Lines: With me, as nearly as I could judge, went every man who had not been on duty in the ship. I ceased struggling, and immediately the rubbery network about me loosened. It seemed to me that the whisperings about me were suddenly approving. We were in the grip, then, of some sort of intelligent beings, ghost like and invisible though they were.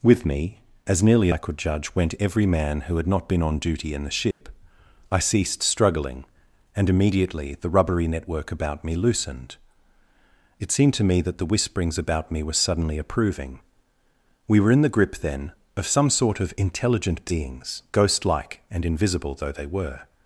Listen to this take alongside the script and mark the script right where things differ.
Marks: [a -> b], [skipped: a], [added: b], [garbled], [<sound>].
With me, as nearly [skipped: as] I could judge, went every man who had not been on duty in the ship. [dropout] I ceased struggling, and immediately the rubbery network about me loosened. It seemed to me that the whisperings about me were suddenly approving. We were in the grip, then, of some sort of intelligent beings, ghost like and invisible though they were.